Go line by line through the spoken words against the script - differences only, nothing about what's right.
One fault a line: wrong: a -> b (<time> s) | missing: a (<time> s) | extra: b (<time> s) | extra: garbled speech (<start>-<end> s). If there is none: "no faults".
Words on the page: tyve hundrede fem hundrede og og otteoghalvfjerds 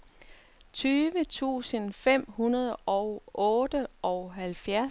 wrong: hundrede -> tusind (1.2 s)
missing: og (3.2 s)